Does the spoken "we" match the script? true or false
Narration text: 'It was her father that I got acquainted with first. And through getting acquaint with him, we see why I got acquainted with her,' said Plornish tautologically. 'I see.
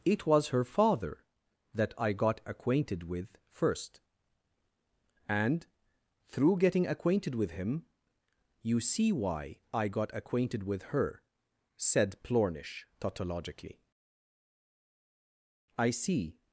false